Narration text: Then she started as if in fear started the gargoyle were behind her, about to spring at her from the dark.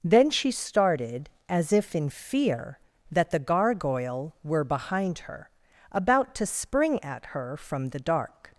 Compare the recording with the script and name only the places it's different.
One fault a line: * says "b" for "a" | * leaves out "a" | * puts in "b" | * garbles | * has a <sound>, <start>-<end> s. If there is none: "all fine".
* says "that" for "started"